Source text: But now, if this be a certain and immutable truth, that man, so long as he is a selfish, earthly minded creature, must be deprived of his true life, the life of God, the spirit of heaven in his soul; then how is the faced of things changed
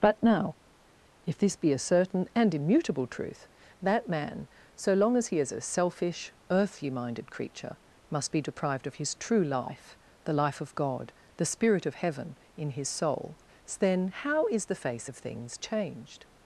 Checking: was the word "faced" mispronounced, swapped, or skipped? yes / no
yes